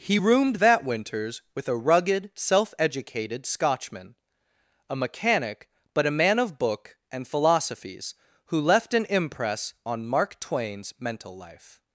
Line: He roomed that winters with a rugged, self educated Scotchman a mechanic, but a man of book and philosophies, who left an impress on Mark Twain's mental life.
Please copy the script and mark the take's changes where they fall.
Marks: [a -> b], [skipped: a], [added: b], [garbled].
He roomed that winters with a rugged, self educated Scotchman a mechanic, but a man of book and philosophies, who left an impress on Mark Twain's mental life.